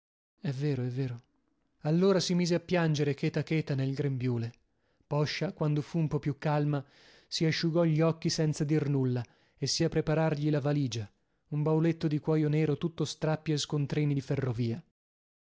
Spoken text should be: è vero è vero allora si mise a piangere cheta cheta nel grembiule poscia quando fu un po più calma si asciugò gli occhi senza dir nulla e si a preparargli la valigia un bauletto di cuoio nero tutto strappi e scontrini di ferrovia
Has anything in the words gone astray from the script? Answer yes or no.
no